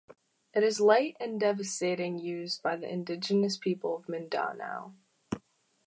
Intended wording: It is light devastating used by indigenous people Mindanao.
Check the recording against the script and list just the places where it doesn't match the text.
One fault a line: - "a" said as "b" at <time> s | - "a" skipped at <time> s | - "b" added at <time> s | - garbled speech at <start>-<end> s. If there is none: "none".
- "and" added at 1.2 s
- "the" added at 2.8 s
- "of" added at 4.0 s